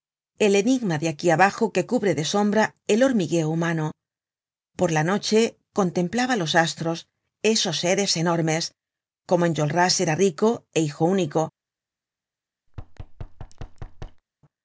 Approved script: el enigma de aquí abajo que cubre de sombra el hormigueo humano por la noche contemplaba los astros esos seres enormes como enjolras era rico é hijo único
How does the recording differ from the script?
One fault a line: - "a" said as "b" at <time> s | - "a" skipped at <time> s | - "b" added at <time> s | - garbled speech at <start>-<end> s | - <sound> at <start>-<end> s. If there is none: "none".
- thud at 12.7-14.2 s